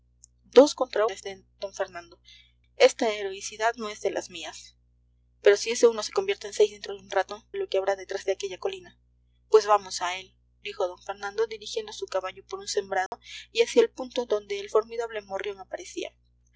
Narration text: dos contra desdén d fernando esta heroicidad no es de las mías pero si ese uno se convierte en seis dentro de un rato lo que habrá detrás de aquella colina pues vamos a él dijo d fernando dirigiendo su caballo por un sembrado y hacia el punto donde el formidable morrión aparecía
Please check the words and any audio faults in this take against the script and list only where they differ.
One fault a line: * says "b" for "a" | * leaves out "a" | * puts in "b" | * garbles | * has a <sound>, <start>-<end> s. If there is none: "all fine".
* has a dropout, 13.1-13.1 s